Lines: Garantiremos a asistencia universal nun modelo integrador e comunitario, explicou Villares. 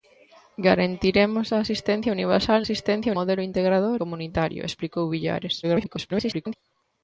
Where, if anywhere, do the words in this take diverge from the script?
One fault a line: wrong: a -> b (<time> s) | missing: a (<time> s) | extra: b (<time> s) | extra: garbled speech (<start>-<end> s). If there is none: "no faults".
wrong: nun -> asistencia (2.6 s)
missing: e (4.0 s)
extra: garbled speech (5.6-6.5 s)